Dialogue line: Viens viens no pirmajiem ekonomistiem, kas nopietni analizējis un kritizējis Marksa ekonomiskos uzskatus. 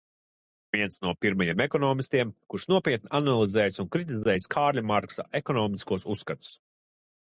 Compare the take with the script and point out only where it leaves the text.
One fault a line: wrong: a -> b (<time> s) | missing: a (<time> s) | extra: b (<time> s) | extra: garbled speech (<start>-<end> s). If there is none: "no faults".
missing: viens (0.9 s)
wrong: kas -> kurš (2.5 s)
extra: Kārļa (4.5 s)